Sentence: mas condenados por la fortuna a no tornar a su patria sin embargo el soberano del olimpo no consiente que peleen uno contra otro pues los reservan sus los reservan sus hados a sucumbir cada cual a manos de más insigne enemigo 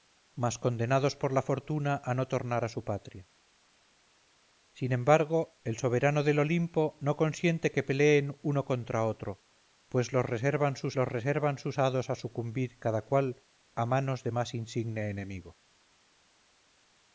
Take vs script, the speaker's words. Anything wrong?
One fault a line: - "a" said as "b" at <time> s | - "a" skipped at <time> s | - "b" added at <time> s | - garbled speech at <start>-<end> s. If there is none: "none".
none